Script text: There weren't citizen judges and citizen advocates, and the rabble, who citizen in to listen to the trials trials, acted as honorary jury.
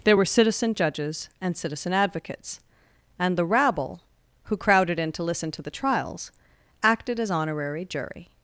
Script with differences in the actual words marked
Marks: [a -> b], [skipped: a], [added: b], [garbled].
There [weren't -> were] citizen judges and citizen advocates, and the rabble, who [citizen -> crowded] in to listen to the trials [skipped: trials,] acted as honorary jury.